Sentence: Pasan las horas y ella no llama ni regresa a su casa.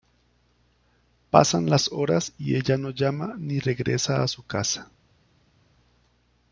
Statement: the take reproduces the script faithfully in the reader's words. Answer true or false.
true